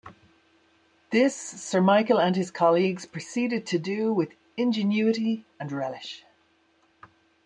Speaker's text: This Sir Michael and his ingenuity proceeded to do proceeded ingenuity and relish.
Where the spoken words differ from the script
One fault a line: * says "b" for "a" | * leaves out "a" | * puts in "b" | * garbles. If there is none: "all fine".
* says "colleagues" for "ingenuity"
* says "with" for "proceeded"